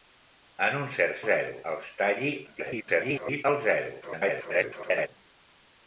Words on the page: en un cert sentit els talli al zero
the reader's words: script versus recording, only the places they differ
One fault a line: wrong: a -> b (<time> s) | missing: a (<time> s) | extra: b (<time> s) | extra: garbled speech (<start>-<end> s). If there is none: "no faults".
wrong: sentit -> zero (1.3 s)
extra: garbled speech (2.5-3.4 s)
extra: garbled speech (4.0-5.1 s)